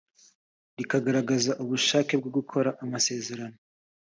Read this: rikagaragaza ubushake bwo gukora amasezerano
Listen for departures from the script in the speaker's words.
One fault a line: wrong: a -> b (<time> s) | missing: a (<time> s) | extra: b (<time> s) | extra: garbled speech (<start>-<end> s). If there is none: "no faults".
no faults